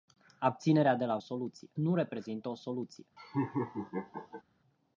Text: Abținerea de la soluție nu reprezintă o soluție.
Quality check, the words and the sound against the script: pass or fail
fail